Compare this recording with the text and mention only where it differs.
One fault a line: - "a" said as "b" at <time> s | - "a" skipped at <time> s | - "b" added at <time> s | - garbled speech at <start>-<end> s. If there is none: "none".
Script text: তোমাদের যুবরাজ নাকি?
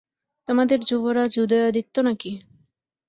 - "উদয়াদিত্য" added at 1.4 s